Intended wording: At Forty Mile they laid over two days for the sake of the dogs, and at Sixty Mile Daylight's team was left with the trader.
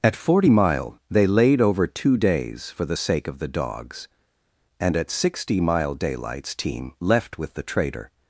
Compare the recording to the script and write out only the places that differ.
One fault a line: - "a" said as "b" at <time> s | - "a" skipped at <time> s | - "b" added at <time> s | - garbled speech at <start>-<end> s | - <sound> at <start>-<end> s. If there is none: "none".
- "was" skipped at 6.9 s